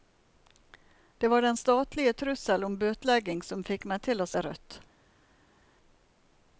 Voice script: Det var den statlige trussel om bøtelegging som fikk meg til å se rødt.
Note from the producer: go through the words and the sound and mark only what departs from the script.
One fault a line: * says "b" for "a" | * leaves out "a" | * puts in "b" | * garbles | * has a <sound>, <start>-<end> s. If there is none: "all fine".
all fine